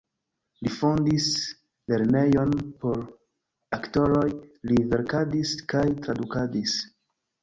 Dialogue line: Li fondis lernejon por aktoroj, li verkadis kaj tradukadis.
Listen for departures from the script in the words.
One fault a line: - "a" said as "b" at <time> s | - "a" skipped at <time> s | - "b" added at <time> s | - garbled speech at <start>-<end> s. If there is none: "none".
none